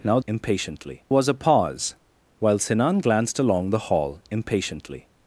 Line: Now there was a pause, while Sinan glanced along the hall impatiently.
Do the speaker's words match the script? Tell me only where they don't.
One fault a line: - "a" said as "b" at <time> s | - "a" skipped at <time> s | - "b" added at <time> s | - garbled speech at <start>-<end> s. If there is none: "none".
- "there" said as "impatiently" at 0.3 s